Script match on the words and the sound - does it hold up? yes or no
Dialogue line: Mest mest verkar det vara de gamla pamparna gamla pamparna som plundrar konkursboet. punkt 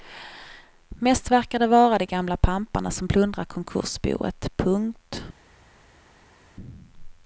no